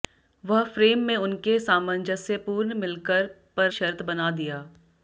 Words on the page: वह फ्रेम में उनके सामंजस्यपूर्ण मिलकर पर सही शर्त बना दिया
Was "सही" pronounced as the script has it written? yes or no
no